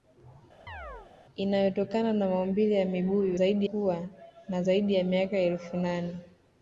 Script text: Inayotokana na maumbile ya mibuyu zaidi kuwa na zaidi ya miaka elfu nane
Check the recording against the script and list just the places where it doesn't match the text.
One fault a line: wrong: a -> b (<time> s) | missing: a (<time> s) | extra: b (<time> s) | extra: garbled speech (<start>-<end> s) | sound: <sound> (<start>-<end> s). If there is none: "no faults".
sound: chirp (0.7-1.1 s)